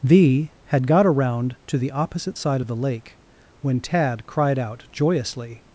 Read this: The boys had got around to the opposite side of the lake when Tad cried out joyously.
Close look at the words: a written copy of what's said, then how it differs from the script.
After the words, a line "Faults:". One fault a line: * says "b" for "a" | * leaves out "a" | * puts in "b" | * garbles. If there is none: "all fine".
The had got around to the opposite side of the lake when Tad cried out joyously.
Faults:
* leaves out "boys"